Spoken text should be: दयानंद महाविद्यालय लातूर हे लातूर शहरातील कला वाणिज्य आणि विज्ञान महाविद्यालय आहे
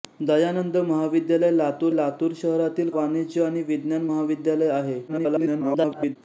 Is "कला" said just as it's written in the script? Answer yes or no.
no